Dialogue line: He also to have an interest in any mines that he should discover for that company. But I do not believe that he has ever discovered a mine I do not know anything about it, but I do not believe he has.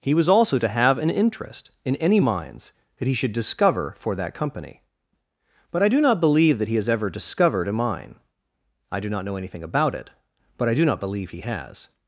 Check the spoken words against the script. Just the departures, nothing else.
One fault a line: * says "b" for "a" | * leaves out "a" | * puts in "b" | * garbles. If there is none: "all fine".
* puts in "was"